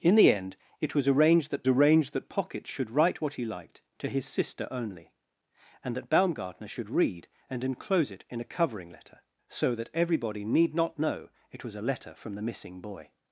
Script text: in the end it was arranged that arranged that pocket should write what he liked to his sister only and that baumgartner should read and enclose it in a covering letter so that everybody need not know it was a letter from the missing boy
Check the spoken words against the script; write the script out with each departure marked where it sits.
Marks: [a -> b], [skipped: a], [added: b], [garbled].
in the end it was arranged that arranged that pocket should write what he liked to his sister only and that baumgartner should read and enclose it in a covering letter so that everybody need not know it was a letter from the missing boy